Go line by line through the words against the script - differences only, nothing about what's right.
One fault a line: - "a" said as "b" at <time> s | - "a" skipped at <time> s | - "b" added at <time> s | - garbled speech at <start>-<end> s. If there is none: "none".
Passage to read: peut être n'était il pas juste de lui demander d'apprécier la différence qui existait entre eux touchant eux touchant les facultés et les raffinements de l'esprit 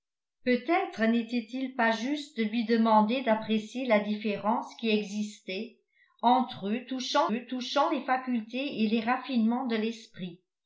none